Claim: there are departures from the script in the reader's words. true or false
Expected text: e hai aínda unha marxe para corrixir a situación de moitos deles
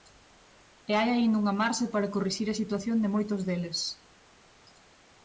false